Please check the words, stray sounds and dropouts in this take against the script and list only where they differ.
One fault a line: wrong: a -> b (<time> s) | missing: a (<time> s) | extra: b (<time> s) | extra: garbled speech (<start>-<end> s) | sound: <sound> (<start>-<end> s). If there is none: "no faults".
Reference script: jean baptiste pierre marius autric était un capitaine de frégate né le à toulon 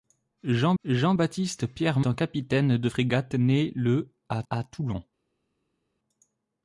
extra: jean (0.8 s)
missing: marius autric était (2.0 s)
extra: à (4.5 s)